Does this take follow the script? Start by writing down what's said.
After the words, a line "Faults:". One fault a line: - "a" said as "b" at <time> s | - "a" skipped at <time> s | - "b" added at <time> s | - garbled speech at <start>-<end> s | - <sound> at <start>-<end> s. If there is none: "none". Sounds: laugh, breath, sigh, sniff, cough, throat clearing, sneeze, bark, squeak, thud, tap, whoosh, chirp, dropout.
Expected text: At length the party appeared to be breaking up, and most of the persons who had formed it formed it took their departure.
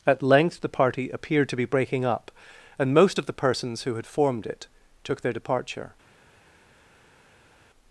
At length the party appeared to be breaking up, and most of the persons who had formed it took their departure.
Faults:
- "formed it" skipped at 4.7 s